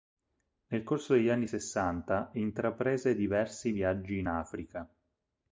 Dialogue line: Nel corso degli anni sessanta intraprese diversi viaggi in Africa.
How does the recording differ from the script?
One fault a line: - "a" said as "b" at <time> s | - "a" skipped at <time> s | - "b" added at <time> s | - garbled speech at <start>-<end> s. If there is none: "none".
none